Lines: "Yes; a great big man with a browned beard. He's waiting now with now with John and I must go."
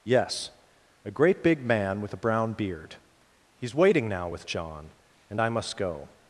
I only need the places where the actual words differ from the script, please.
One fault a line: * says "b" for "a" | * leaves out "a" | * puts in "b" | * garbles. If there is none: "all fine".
* says "brown" for "browned"
* leaves out "now with"